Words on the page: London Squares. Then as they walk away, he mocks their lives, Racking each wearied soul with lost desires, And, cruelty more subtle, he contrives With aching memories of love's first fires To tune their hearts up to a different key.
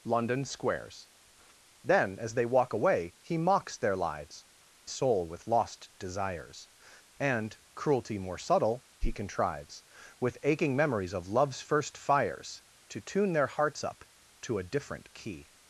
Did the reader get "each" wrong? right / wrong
wrong